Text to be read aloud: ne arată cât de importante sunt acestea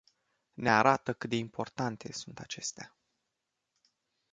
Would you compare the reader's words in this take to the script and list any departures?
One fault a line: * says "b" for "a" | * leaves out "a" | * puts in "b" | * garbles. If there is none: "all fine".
all fine